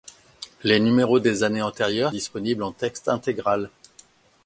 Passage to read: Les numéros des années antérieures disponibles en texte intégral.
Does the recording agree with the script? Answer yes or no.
yes